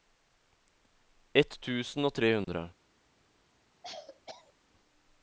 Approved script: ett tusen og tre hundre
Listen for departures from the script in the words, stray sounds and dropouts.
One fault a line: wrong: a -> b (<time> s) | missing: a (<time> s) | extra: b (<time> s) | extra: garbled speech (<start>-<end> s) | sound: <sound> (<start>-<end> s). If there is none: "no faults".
sound: dropout (2.4-2.5 s)
sound: cough (3.8-4.5 s)